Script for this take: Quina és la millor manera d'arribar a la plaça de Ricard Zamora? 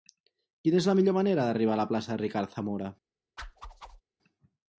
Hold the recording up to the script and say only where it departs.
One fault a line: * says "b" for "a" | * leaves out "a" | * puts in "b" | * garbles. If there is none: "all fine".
all fine